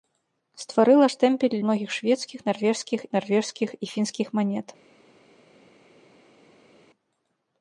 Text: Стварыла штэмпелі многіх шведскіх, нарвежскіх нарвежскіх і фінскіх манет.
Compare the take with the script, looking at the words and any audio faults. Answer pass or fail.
pass